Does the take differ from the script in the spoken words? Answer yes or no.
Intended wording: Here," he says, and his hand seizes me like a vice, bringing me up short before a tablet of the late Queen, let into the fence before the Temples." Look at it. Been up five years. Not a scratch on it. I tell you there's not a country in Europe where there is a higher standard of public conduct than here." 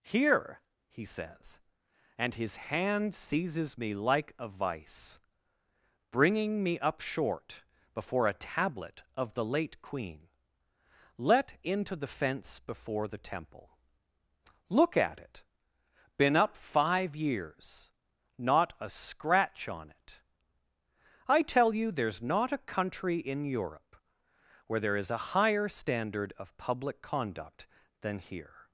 yes